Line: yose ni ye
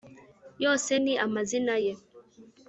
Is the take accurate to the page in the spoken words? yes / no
no